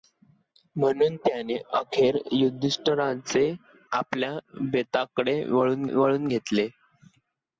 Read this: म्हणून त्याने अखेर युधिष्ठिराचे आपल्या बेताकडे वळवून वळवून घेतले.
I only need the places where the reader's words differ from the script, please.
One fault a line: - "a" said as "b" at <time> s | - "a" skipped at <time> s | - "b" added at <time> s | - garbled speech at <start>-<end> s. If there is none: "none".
none